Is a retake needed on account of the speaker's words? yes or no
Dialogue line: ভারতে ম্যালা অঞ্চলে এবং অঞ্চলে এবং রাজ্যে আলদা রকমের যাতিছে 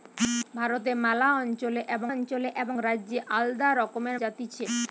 no